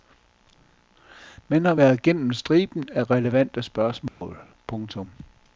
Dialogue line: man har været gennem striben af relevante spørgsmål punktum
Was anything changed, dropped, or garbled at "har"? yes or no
no